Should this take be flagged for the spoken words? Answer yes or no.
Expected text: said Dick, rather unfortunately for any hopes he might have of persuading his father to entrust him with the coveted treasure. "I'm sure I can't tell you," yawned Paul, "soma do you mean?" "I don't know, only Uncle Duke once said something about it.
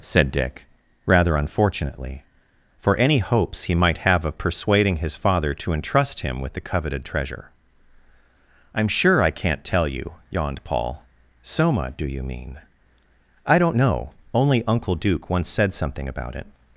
no